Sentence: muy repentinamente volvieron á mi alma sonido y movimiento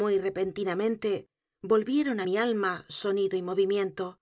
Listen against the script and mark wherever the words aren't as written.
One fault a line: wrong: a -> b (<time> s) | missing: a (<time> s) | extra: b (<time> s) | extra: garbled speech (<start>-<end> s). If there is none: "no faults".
no faults